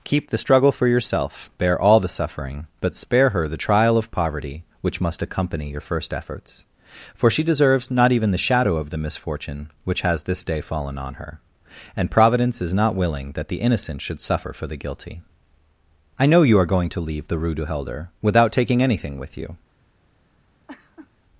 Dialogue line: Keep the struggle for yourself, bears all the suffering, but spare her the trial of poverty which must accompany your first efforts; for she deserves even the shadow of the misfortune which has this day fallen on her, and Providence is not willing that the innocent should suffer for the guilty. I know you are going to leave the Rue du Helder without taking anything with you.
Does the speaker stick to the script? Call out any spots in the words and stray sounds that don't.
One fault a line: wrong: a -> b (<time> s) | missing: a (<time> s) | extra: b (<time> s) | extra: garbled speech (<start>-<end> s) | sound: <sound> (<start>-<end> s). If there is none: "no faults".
wrong: bears -> bear (1.6 s)
extra: not (7.9 s)
sound: laugh (20.7-21.1 s)